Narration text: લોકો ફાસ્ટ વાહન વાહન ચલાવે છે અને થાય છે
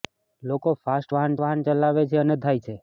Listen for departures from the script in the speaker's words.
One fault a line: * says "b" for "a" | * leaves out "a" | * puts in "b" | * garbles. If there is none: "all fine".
all fine